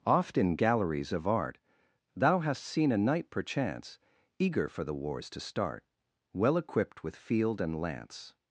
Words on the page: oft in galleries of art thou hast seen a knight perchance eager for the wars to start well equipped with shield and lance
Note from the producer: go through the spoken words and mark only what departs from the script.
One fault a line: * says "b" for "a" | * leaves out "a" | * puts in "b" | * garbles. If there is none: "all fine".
* says "field" for "shield"